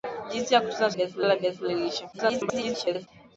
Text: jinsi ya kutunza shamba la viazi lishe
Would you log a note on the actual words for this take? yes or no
yes